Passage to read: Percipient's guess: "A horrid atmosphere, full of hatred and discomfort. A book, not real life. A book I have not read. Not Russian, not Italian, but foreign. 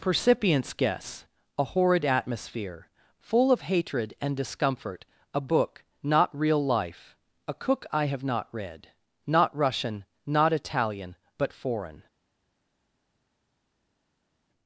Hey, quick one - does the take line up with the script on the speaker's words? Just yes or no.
no